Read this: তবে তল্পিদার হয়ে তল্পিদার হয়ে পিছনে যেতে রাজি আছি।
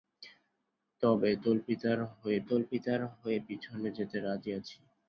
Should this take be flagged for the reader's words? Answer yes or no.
no